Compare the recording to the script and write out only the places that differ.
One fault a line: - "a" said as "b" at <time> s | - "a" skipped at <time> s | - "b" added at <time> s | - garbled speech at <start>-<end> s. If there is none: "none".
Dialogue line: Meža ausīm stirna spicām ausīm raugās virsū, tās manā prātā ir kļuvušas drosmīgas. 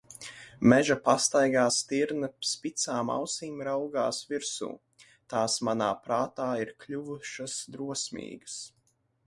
- "ausīm" said as "pastaigā" at 1.1 s